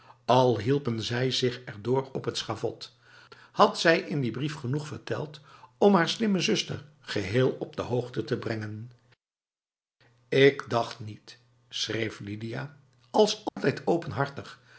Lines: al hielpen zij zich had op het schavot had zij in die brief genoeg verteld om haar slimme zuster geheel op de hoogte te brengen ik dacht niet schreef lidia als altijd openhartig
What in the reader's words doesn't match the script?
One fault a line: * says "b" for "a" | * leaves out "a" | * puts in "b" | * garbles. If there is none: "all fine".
* says "erdoor" for "had"